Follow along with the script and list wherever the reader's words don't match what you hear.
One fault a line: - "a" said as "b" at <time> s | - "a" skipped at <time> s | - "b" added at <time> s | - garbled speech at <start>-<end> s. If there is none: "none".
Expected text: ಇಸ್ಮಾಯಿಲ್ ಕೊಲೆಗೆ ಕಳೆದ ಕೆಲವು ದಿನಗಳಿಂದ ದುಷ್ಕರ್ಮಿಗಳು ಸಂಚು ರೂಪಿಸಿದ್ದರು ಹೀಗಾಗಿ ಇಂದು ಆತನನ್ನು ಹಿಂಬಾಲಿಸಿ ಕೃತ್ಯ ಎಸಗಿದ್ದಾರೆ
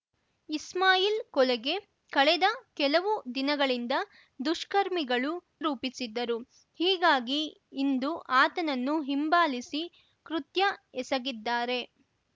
- "ಸಂಚು" skipped at 5.3 s